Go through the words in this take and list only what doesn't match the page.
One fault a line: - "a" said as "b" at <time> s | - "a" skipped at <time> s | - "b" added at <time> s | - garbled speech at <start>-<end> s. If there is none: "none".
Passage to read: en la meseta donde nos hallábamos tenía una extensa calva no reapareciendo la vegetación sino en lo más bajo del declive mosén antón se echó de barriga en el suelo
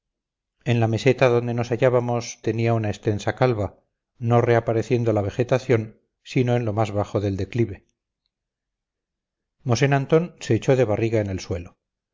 none